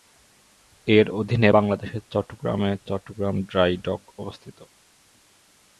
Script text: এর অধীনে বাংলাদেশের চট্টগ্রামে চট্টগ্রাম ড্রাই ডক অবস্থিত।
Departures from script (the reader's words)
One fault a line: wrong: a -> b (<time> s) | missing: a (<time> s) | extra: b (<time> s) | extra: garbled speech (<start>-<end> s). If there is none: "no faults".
no faults